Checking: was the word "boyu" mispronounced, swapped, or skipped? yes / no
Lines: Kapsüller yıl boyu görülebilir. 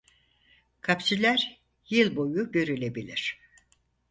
no